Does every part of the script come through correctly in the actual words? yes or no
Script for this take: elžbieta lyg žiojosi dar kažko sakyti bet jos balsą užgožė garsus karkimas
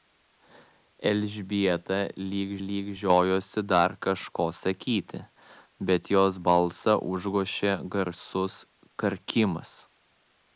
no